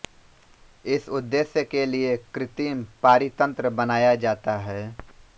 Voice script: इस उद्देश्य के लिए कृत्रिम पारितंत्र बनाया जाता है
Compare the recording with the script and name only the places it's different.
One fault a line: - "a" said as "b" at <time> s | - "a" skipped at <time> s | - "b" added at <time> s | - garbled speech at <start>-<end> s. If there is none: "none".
none